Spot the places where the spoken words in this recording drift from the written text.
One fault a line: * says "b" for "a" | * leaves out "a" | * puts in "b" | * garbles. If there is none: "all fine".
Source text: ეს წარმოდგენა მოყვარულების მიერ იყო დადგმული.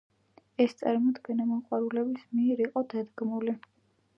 all fine